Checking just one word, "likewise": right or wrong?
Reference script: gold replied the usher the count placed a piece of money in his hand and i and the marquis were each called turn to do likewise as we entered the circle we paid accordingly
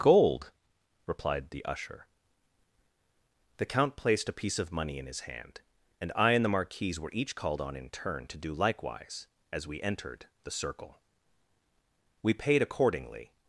right